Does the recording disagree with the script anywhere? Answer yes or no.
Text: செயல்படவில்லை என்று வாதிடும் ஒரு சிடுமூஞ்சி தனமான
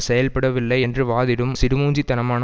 yes